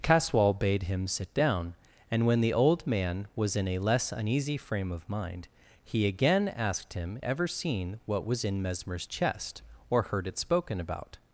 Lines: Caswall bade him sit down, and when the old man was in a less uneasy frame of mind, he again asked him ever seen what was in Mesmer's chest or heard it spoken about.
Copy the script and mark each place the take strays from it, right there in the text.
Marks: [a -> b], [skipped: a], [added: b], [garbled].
Caswall bade him sit down, and when the old man was in a less uneasy frame of mind, he again asked him ever seen what was in Mesmer's chest or heard it spoken about.